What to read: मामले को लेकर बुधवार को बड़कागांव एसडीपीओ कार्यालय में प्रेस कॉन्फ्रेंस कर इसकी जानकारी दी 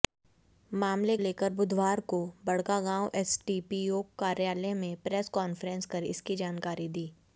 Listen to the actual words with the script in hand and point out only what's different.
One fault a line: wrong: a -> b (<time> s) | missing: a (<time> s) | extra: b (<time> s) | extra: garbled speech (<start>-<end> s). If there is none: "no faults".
missing: को (1.1 s)